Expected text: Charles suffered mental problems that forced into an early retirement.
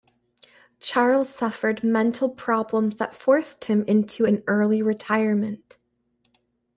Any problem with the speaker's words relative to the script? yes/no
yes